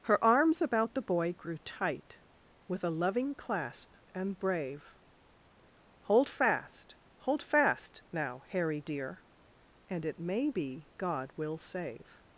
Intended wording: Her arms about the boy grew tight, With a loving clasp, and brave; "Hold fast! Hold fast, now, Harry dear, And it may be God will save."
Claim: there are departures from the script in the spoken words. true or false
false